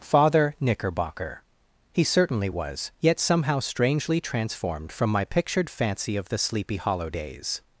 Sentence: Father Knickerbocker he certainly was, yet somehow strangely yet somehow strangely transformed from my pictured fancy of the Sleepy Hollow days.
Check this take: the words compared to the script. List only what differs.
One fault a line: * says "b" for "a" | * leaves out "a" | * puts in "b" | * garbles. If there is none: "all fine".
* leaves out "yet somehow strangely"